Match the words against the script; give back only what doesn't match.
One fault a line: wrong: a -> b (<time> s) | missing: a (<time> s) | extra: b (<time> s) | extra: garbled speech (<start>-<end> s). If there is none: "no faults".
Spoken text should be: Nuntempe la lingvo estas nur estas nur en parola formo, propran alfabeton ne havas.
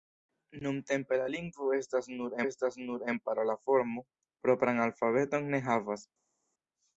no faults